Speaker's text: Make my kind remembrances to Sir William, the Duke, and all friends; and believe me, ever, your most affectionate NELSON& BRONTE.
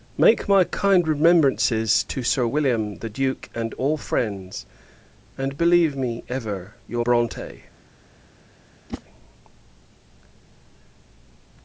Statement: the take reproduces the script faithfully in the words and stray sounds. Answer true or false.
false